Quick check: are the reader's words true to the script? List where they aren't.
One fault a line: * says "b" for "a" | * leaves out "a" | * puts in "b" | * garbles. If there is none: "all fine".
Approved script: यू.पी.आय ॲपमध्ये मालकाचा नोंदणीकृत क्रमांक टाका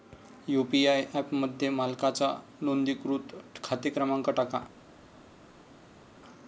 * puts in "खाते"